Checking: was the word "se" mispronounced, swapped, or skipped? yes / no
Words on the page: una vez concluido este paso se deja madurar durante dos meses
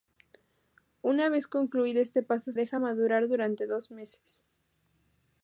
yes